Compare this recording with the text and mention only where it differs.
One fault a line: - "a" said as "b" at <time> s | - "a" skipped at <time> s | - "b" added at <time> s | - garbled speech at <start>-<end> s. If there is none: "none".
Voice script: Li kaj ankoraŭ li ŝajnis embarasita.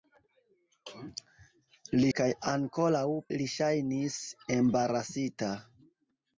none